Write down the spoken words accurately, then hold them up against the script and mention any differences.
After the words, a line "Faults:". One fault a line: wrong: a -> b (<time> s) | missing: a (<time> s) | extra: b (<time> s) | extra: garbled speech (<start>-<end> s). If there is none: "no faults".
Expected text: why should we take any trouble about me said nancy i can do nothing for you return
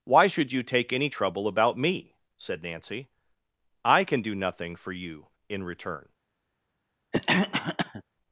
why should you take any trouble about me said nancy i can do nothing for you in return
Faults:
wrong: we -> you (0.5 s)
extra: in (5.5 s)